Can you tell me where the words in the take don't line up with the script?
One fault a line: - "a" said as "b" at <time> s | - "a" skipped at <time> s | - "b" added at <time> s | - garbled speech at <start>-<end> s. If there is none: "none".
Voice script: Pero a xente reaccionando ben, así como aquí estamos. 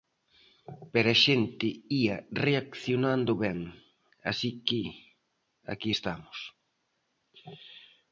- "ía" added at 2.0 s
- "como" said as "que" at 4.7 s